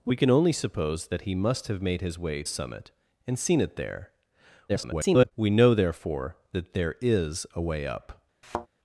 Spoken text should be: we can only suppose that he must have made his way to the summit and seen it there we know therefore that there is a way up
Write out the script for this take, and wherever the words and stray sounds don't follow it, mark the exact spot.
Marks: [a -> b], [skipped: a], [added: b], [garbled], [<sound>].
we can only suppose that he must have made his way [skipped: to the] summit and seen it there [garbled] we know therefore that there is a way up [thud]